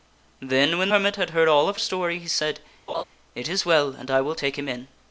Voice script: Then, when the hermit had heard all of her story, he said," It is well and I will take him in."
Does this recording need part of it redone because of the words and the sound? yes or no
yes